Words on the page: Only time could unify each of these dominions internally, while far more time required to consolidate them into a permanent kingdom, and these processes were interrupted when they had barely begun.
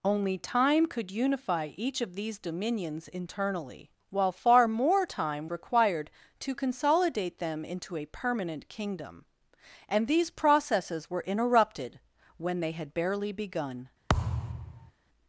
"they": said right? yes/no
yes